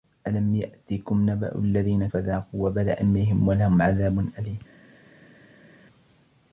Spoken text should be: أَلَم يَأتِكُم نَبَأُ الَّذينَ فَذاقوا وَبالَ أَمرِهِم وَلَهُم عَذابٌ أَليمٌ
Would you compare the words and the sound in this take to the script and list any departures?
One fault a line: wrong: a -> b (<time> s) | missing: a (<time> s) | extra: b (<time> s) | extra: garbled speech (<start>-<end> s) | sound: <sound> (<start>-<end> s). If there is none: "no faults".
no faults